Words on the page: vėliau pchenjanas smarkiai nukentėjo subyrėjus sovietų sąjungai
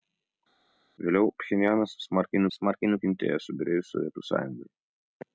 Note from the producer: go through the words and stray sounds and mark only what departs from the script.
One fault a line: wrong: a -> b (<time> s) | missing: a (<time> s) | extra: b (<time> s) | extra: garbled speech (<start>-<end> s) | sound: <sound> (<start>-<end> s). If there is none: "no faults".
extra: smarkiai (2.6 s)